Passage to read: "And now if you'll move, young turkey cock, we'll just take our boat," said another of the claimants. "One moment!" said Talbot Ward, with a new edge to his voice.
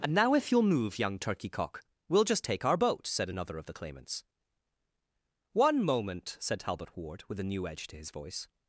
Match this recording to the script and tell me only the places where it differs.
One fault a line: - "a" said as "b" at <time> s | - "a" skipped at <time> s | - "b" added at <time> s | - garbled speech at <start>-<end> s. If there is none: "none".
none